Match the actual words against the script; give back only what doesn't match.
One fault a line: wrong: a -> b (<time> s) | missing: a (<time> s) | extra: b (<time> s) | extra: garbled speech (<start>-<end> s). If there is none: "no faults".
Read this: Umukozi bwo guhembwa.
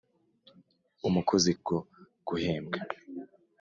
no faults